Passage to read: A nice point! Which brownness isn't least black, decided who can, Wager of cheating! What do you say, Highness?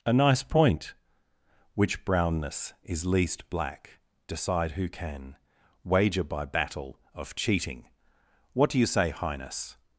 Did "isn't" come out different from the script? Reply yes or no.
yes